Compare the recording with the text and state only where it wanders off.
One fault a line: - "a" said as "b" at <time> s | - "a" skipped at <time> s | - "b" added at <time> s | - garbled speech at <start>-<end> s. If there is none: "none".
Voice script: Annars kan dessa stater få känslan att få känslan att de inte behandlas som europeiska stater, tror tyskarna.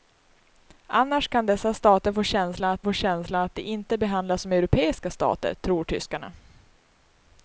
none